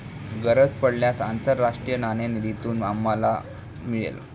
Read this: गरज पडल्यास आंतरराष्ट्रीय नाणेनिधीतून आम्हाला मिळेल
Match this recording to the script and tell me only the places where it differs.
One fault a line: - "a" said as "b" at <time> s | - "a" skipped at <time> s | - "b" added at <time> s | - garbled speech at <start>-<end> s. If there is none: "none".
none